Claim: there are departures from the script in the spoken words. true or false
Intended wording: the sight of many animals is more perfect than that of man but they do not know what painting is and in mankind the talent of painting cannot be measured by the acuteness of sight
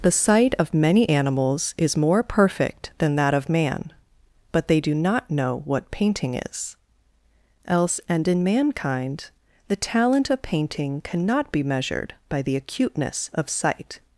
true